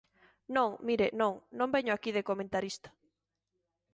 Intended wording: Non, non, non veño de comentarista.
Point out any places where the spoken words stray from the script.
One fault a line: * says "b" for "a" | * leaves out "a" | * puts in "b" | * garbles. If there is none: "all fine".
* puts in "mire"
* puts in "aquí"